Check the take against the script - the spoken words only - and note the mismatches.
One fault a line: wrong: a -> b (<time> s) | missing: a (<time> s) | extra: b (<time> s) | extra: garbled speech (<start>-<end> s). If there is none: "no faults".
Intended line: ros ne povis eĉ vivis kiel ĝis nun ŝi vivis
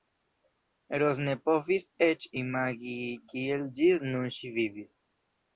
wrong: vivis -> imagi (2.4 s)